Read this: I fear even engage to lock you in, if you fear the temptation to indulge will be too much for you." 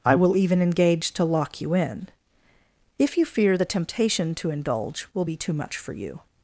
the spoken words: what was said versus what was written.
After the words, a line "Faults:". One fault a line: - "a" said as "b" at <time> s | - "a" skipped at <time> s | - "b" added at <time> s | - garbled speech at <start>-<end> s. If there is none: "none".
I will even engage to lock you in, if you fear the temptation to indulge will be too much for you."
Faults:
- "fear" said as "will" at 0.1 s